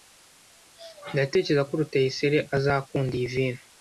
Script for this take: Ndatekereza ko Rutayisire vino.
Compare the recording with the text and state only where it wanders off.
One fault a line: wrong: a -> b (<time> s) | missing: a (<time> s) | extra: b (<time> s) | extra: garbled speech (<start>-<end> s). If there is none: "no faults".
extra: azakunda iyi (2.5 s)